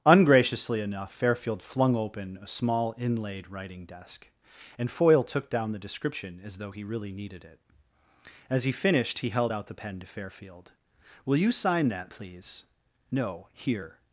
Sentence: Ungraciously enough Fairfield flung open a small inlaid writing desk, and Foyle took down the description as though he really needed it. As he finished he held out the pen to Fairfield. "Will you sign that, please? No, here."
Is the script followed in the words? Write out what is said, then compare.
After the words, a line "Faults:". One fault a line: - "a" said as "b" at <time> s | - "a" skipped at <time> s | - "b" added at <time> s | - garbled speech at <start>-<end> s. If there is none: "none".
Ungraciously enough Fairfield flung open a small inlaid writing desk, and Foyle took down the description as though he really needed it. As he finished he held out the pen to Fairfield. "Will you sign that, please? No, here."
Faults:
none